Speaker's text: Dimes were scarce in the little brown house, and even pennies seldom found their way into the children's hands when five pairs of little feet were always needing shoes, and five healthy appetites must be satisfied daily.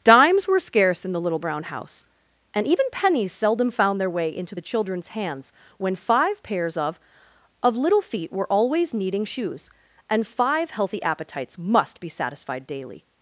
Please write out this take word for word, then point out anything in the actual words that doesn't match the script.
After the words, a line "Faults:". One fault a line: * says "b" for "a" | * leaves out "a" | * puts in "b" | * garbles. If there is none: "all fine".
Dimes were scarce in the little brown house, and even pennies seldom found their way into the children's hands when five pairs of of little feet were always needing shoes, and five healthy appetites must be satisfied daily.
Faults:
* puts in "of"